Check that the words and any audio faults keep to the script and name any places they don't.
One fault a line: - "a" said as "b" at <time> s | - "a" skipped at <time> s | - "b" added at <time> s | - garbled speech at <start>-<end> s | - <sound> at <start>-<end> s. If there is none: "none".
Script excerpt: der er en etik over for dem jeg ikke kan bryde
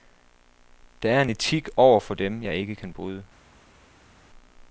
none